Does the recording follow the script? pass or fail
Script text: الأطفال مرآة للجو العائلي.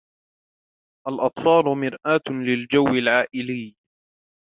pass